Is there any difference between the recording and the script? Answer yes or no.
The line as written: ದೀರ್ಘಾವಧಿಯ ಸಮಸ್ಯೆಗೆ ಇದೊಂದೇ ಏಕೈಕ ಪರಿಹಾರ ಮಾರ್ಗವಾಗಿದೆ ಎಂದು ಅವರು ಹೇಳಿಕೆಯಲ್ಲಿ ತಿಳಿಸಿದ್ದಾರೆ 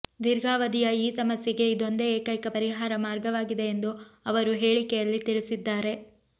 yes